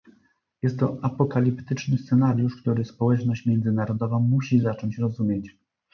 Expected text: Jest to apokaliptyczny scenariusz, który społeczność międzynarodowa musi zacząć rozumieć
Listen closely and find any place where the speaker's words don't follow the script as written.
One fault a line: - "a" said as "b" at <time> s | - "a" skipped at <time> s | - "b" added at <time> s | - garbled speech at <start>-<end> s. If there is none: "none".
none